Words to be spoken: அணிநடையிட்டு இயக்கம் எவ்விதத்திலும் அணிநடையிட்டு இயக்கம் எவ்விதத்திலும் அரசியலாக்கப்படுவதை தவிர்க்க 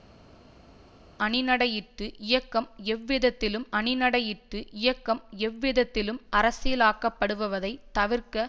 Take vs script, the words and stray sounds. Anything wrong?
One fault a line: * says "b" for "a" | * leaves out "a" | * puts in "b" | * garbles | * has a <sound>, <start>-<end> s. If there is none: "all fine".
all fine